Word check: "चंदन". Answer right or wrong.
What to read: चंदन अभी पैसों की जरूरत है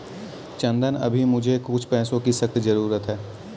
right